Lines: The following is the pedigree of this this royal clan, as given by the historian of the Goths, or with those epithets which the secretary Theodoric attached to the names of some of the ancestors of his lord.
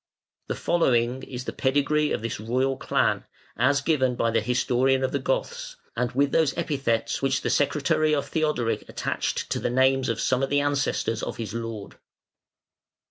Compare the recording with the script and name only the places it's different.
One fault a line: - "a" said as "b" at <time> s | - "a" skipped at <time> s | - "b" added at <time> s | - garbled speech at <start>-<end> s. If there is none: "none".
- "this" skipped at 2.4 s
- "or" said as "and" at 6.0 s
- "of" added at 8.2 s